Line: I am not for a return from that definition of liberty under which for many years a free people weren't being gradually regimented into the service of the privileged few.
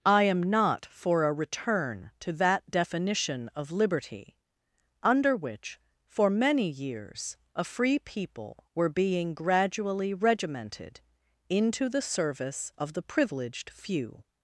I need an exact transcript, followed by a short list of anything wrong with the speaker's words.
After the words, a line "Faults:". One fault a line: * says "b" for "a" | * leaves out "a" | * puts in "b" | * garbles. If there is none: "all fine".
I am not for a return to that definition of liberty under which for many years a free people were being gradually regimented into the service of the privileged few.
Faults:
* says "to" for "from"
* says "were" for "weren't"